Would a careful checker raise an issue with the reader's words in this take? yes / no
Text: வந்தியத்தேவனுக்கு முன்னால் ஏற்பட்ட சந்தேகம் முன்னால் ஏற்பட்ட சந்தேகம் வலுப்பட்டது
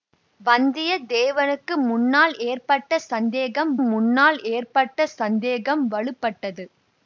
no